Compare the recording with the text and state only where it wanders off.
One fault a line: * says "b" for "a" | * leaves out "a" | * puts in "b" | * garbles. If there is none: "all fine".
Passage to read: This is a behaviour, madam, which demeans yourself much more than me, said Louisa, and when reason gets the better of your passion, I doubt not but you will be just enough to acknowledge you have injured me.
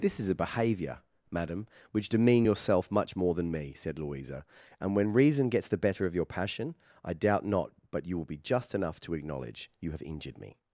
* says "demean" for "demeans"